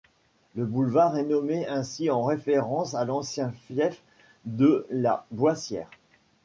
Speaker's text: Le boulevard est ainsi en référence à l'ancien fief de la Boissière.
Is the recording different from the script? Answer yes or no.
yes